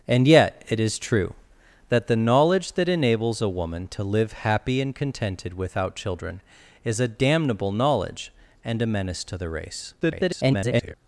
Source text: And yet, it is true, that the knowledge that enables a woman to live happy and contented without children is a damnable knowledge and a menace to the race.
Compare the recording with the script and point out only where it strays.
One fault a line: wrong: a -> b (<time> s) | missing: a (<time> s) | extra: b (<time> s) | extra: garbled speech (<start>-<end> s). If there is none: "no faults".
extra: garbled speech (10.0-10.9 s)